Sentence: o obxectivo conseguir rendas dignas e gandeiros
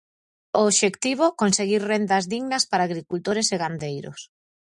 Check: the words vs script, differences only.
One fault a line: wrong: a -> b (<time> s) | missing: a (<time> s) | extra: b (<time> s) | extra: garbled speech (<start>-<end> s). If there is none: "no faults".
extra: para agricultores (2.7 s)